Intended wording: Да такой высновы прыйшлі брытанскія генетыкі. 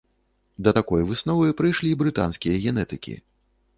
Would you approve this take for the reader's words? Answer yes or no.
yes